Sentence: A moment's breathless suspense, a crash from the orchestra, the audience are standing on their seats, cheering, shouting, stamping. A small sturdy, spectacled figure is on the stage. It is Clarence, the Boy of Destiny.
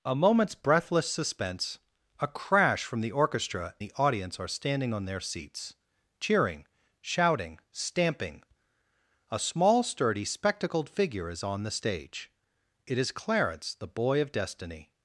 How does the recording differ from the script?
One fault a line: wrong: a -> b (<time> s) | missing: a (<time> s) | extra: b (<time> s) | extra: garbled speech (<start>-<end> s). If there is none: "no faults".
no faults